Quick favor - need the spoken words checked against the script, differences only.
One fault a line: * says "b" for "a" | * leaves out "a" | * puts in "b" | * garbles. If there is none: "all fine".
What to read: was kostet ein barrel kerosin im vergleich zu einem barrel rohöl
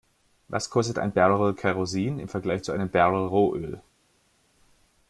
all fine